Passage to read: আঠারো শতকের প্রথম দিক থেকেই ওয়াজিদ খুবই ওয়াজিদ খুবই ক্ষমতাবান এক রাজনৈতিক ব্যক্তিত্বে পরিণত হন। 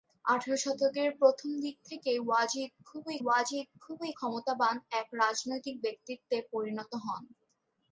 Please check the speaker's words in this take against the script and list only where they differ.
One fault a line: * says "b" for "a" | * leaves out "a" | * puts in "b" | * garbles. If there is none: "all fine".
all fine